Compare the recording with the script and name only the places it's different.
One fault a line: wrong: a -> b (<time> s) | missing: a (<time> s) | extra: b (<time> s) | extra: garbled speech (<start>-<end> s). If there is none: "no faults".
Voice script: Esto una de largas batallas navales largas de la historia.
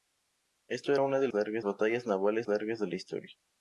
no faults